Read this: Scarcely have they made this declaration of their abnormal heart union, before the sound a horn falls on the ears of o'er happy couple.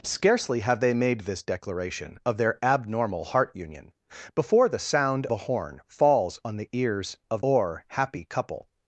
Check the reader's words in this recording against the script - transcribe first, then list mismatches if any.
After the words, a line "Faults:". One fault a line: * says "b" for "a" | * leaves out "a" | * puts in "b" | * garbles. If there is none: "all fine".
Scarcely have they made this declaration of their abnormal heart union, before the sound a horn falls on the ears of o'er happy couple.
Faults:
all fine